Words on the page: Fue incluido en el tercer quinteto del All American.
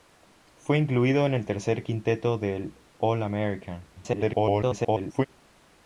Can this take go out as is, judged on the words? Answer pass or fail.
fail